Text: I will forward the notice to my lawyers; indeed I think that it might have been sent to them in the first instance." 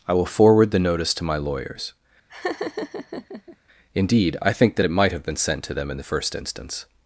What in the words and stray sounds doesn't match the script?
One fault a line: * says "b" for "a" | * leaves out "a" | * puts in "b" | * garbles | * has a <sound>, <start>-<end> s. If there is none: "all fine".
* has a laugh, 2.3-3.6 s